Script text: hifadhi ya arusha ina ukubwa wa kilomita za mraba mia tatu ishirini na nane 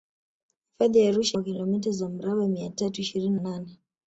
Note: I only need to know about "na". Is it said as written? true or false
false